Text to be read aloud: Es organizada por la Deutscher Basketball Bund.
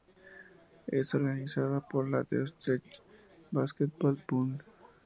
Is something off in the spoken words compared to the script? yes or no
no